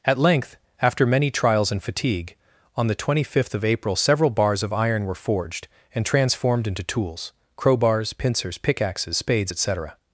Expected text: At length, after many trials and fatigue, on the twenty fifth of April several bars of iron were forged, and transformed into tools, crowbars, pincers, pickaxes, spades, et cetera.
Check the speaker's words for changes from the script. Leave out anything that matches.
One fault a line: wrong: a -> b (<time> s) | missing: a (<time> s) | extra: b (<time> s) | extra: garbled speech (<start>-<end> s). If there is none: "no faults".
no faults